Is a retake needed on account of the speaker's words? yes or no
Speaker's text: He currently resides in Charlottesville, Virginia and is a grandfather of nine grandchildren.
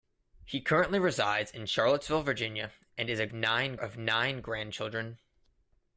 yes